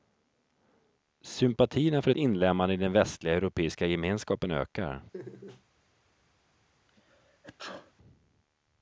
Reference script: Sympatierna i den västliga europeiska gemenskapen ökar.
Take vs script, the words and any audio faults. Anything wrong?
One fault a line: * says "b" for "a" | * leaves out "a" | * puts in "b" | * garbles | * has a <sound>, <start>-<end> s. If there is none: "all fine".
* puts in "för ett inlemmande"
* has a laugh, 5.1-5.6 s
* has a sneeze, 6.9-7.9 s